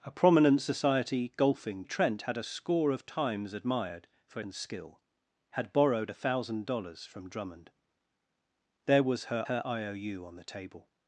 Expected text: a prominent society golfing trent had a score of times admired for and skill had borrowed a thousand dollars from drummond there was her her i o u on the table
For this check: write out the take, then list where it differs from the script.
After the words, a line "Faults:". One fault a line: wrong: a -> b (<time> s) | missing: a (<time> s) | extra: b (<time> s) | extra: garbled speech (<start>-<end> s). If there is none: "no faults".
a prominent society golfing trent had a score of times admired for and skill had borrowed a thousand dollars from drummond there was her her i o u on the table
Faults:
no faults